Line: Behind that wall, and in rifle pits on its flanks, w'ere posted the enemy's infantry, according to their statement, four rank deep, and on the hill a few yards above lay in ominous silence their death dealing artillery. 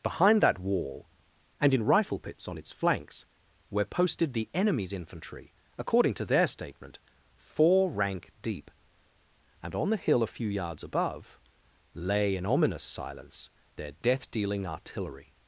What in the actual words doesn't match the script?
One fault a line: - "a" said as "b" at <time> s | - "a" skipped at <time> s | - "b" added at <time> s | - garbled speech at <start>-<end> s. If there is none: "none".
none